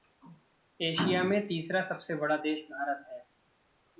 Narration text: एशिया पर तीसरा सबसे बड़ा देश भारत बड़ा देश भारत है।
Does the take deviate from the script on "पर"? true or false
true